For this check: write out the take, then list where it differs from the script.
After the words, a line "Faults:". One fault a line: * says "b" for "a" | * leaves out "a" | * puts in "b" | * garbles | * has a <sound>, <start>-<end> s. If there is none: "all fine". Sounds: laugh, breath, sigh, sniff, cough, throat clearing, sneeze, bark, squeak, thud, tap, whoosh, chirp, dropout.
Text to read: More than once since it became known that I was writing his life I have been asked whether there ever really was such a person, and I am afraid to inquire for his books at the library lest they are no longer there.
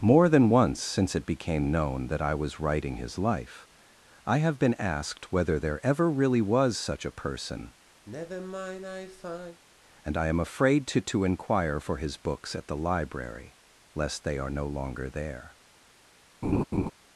More than once since it became known that I was writing his life I have been asked whether there ever really was such a person, and I am afraid to to inquire for his books at the library lest they are no longer there.
Faults:
* has a sigh, 8.1-9.6 s
* puts in "to"
* has a laugh, 16.4-16.9 s